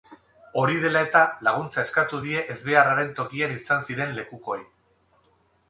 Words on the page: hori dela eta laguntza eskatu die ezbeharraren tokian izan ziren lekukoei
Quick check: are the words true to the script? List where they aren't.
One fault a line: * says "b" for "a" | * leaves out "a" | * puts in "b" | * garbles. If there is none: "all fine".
all fine